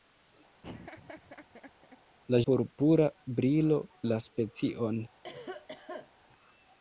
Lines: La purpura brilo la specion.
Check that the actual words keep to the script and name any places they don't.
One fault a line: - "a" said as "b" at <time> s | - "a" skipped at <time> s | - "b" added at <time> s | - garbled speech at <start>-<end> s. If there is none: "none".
none